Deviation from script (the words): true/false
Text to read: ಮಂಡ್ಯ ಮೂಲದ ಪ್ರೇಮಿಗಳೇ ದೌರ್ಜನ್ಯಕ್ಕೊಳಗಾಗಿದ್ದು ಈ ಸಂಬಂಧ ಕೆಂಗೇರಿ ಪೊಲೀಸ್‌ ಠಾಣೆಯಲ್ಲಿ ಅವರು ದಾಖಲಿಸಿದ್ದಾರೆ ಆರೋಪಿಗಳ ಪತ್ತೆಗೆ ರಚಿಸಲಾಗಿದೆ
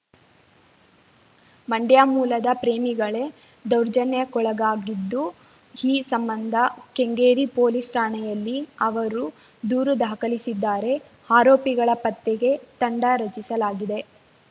true